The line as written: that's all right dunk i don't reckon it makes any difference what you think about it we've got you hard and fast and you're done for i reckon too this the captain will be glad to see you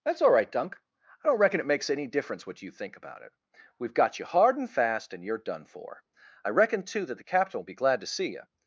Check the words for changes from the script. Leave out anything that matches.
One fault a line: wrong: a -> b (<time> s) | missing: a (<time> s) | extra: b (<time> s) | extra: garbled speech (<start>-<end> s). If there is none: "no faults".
wrong: this -> that (7.1 s)